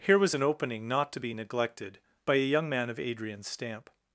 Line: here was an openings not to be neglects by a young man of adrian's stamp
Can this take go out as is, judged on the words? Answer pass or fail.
fail